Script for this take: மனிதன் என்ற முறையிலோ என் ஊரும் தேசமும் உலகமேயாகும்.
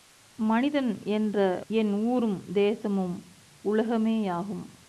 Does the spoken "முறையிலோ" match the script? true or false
false